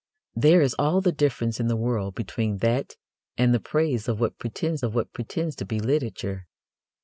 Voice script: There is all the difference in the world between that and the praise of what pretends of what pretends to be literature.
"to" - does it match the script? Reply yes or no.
yes